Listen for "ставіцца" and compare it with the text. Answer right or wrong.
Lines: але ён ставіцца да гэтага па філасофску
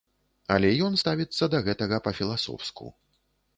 right